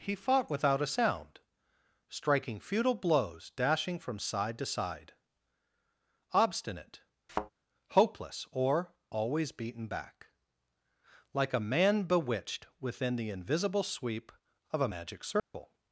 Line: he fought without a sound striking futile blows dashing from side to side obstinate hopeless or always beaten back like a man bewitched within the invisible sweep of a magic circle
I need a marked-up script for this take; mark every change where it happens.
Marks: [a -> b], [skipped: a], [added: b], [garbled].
he fought without a sound striking futile blows dashing from side to side obstinate hopeless or always beaten back like a man bewitched within the invisible sweep of a magic circle